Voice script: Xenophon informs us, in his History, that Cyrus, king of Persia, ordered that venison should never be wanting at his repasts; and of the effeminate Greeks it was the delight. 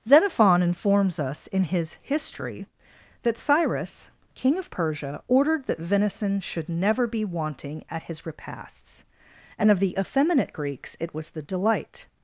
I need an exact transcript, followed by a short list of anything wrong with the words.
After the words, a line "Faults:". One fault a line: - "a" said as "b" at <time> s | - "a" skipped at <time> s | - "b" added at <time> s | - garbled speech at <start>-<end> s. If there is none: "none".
Xenophon informs us, in his History, that Cyrus, king of Persia, ordered that venison should never be wanting at his repasts; and of the effeminate Greeks it was the delight.
Faults:
none